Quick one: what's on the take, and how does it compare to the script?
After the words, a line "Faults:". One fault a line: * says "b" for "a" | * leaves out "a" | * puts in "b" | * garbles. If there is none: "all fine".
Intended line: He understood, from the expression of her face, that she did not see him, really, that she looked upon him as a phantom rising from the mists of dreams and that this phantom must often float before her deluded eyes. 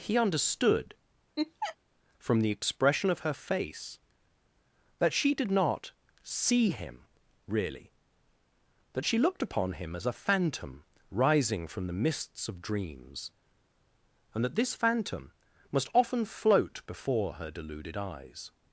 He understood, from the expression of her face, that she did not see him, really, that she looked upon him as a phantom rising from the mists of dreams and that this phantom must often float before her deluded eyes.
Faults:
all fine